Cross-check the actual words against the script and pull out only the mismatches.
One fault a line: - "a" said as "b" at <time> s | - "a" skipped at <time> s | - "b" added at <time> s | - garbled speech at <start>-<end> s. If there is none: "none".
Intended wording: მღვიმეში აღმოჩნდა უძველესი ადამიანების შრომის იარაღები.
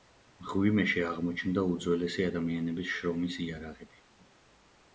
none